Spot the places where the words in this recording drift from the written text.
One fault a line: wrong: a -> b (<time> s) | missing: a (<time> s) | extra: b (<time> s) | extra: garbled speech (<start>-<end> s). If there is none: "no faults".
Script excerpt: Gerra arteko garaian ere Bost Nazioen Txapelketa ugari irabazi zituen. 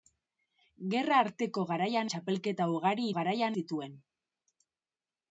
missing: ere Bost Nazioen (2.1 s)
wrong: irabazi -> garaian (3.2 s)